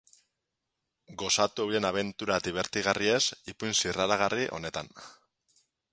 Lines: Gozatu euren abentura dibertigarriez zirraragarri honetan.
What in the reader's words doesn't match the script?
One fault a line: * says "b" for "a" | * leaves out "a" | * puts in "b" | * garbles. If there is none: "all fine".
* puts in "ipuin"